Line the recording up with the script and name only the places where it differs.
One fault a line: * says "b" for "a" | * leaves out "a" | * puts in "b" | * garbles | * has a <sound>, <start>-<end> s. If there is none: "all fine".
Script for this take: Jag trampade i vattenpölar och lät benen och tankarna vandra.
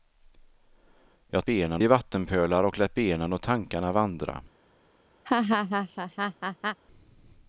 * says "benen" for "trampade"
* has a laugh, 5.3-6.8 s